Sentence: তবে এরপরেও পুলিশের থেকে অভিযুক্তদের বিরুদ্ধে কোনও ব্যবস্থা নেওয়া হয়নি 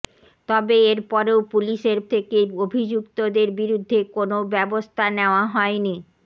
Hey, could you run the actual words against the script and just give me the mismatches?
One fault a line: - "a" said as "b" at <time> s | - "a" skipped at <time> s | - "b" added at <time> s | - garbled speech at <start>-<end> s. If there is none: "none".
none